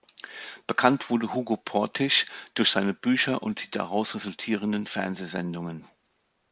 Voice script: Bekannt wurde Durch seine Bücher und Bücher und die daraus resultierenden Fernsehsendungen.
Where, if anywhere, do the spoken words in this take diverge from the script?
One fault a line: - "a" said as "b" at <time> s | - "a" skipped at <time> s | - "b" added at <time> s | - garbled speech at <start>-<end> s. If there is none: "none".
- "Hugo Portisch" added at 1.3 s
- "Bücher und" skipped at 3.6 s